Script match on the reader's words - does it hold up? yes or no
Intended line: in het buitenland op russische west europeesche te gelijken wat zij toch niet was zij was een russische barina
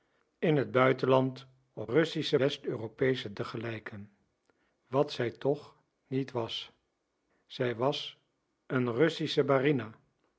yes